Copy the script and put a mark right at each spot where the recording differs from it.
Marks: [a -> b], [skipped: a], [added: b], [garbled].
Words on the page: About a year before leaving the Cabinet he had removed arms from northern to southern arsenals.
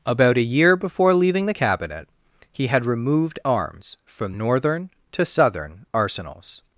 About a year before leaving the Cabinet he had removed arms from northern to southern arsenals.